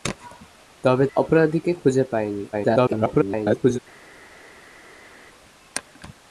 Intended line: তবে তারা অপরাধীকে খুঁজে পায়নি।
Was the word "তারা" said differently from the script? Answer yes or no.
yes